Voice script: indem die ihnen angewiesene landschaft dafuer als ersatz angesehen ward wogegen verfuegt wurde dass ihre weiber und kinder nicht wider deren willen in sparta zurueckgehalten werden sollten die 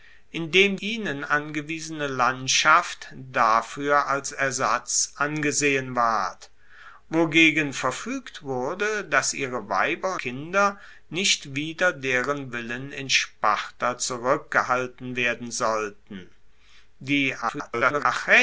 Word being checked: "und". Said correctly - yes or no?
no